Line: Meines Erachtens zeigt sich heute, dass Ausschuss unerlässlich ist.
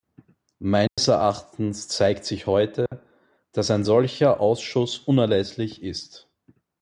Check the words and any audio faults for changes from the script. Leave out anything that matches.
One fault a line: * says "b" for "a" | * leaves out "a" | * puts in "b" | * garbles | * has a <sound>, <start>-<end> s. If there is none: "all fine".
* has a dropout, 0.9-1.0 s
* has a dropout, 2.9-2.9 s
* puts in "ein solcher"